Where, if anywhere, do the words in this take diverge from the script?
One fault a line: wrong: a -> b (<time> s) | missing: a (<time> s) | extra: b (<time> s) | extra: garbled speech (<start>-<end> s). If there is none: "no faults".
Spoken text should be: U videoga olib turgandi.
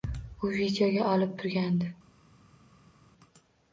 no faults